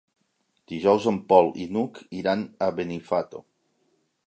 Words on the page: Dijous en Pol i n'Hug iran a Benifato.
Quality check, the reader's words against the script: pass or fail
pass